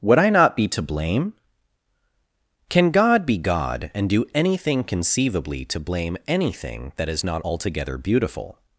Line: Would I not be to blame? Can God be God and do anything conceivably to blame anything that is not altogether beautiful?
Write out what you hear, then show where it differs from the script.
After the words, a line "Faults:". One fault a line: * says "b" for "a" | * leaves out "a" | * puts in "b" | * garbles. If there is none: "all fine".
Would I not be to blame? Can God be God and do anything conceivably to blame anything that is not altogether beautiful?
Faults:
all fine